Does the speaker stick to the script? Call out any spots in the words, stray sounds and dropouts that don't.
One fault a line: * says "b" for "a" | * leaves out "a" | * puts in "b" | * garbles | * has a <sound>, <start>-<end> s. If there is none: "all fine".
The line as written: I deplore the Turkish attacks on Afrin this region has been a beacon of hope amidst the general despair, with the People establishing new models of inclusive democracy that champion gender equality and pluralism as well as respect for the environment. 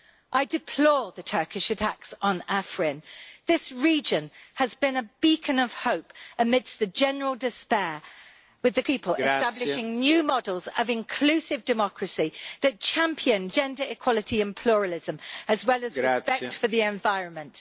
all fine